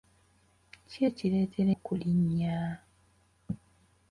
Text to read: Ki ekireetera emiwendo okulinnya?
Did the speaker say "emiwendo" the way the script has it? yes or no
no